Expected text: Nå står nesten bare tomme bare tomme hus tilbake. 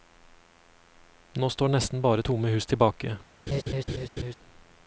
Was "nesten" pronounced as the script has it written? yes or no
yes